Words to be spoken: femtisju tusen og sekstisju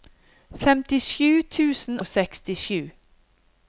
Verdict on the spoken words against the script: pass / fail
pass